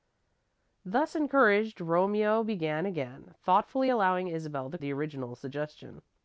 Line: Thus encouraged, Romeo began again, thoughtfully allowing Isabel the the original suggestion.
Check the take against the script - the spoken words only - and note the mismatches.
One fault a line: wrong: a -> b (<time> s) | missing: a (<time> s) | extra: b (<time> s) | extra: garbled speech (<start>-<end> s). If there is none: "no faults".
no faults